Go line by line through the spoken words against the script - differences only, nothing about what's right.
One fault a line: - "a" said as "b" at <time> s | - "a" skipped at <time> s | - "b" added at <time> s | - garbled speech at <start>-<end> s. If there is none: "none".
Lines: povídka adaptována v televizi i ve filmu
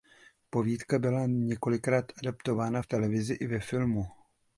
- "byla několikrát" added at 1.0 s